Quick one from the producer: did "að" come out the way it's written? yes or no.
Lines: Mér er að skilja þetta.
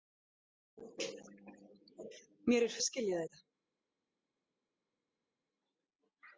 yes